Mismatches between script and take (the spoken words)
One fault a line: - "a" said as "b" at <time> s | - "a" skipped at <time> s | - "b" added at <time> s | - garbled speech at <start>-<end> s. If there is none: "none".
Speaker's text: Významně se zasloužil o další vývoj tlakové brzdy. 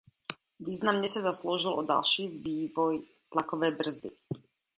none